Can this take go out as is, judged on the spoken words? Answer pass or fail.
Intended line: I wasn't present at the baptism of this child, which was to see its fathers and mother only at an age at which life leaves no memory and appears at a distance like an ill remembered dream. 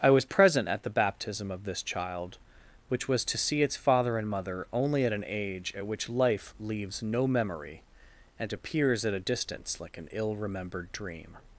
fail